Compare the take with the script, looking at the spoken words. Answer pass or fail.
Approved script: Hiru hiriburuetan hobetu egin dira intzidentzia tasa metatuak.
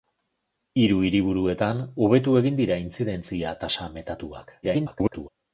fail